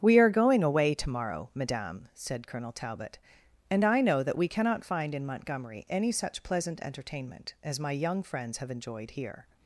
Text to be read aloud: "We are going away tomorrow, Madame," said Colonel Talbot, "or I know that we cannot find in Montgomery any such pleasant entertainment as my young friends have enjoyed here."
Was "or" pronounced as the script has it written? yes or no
no